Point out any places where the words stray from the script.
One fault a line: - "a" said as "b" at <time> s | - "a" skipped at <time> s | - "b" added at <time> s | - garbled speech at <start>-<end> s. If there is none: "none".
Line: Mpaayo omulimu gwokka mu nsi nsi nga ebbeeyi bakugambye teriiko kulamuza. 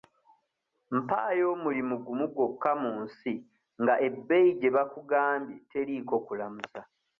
- "gumu" added at 2.0 s
- "nsi" skipped at 3.3 s
- "gye" added at 4.6 s